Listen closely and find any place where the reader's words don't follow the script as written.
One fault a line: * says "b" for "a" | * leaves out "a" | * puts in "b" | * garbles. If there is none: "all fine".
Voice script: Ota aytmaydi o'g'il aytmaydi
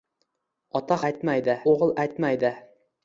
all fine